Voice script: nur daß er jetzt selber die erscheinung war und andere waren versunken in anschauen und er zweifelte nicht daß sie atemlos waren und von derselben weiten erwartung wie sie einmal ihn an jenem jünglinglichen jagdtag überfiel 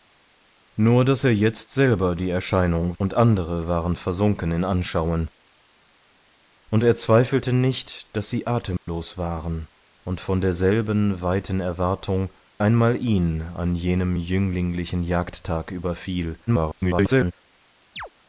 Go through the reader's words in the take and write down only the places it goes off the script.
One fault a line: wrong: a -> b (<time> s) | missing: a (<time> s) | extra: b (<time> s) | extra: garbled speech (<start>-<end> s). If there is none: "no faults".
missing: war (3.0 s)
missing: wie sie (12.3 s)
extra: garbled speech (16.5-17.3 s)